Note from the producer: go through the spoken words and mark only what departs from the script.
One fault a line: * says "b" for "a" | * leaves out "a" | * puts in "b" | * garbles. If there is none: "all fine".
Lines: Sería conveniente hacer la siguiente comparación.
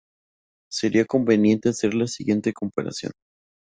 all fine